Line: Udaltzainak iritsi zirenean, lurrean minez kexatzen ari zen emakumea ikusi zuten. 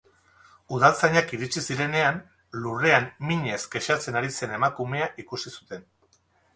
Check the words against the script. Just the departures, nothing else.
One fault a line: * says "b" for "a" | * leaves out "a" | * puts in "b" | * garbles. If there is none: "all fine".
all fine